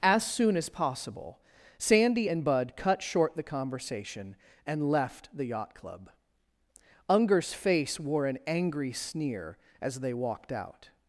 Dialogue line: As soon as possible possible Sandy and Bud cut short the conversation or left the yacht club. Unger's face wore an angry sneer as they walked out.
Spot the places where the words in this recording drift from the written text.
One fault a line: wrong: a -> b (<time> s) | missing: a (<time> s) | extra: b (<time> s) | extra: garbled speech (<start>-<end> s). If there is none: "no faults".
missing: possible (1.4 s)
wrong: or -> and (4.7 s)